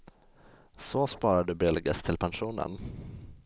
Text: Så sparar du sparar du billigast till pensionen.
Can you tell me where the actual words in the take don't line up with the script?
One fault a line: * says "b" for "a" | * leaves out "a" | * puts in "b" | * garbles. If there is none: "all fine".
* leaves out "sparar du"